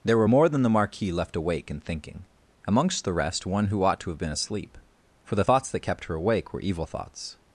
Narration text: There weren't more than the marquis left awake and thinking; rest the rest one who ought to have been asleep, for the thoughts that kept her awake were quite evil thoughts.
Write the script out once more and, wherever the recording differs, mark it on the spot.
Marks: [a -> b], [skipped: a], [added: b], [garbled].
There [weren't -> were] more than the marquis left awake and thinking; [rest -> amongst] the rest one who ought to have been asleep, for the thoughts that kept her awake were [skipped: quite] evil thoughts.